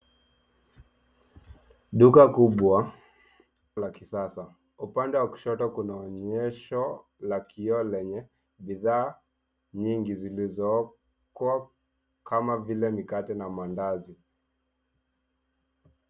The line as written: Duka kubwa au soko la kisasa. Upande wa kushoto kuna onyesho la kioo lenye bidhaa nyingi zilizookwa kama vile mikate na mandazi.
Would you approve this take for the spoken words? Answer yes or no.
no